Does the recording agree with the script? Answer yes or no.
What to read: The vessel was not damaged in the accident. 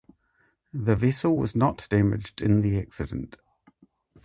yes